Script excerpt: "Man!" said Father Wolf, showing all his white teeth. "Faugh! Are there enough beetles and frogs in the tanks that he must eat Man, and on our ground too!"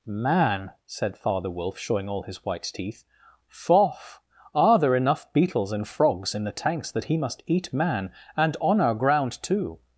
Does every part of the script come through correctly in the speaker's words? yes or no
yes